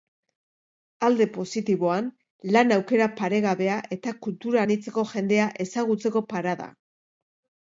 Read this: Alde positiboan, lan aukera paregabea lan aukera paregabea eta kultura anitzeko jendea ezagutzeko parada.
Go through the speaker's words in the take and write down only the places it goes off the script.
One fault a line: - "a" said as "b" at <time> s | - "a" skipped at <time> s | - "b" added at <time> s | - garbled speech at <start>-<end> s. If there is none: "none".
- "lan aukera paregabea" skipped at 3.8 s